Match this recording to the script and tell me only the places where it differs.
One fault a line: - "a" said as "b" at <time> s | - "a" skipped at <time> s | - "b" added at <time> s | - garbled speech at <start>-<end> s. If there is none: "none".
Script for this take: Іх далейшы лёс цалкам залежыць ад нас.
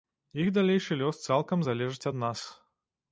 none